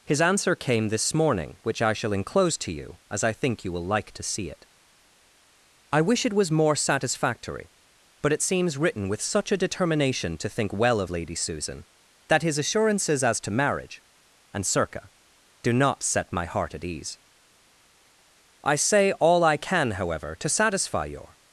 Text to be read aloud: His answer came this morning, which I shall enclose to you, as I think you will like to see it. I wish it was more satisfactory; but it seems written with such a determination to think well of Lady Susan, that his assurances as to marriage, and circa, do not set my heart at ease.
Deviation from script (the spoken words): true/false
true